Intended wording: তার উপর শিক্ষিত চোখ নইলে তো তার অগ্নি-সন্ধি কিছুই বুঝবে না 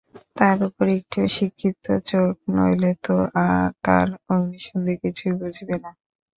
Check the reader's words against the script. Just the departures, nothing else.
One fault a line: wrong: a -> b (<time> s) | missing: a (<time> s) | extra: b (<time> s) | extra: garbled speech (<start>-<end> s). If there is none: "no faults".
extra: একটু (1.0 s)